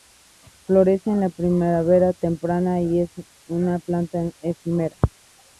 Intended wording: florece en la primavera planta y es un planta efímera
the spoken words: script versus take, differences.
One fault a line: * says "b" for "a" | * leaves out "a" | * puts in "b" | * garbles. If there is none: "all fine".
* says "temprana" for "planta"
* says "una" for "un"